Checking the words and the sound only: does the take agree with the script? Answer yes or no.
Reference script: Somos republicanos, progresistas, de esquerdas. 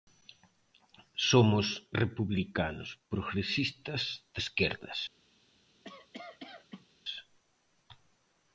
no